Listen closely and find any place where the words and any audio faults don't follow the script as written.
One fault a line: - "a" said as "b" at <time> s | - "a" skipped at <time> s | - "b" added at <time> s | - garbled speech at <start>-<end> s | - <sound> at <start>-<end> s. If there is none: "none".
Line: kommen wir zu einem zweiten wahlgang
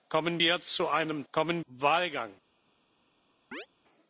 - "zweiten" said as "kommen" at 1.3 s
- chirp at 3.5-3.7 s